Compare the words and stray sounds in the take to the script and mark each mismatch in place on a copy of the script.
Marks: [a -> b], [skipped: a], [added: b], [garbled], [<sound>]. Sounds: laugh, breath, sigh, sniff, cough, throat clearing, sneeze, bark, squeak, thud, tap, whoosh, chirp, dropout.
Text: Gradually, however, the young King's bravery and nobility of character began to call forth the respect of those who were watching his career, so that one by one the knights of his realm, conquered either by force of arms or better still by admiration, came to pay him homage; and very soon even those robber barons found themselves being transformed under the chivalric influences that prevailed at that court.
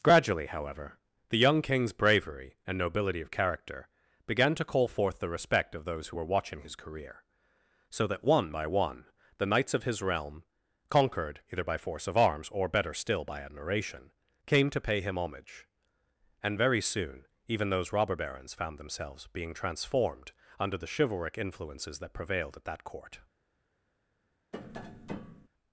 Gradually, however, the young King's bravery and nobility of character began to call forth the respect of those who were watching his career, so that one by one the knights of his realm, conquered either by force of arms or better still by admiration, came to pay him homage; and very soon even those robber barons found themselves being transformed under the chivalric influences that prevailed at that court. [tap]